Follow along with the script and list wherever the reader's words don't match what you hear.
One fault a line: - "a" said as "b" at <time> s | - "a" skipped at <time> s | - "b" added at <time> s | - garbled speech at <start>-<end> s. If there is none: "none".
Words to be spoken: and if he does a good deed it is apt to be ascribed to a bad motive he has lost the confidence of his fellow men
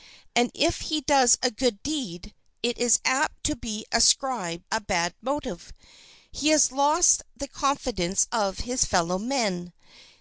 - "to" skipped at 4.6 s